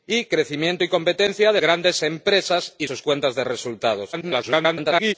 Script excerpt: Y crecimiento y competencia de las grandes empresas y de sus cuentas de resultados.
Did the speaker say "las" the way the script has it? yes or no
no